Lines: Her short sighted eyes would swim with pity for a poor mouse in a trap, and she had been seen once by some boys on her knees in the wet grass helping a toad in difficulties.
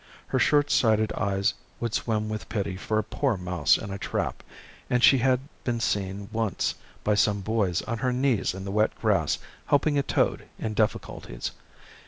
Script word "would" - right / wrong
right